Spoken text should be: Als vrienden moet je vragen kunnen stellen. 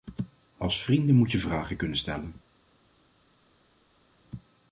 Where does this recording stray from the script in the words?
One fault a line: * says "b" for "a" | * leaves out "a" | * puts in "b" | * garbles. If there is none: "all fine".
all fine